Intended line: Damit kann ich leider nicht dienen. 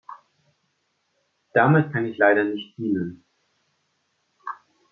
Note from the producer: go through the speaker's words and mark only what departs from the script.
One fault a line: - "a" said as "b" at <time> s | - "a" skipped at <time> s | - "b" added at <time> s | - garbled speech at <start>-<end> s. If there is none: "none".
none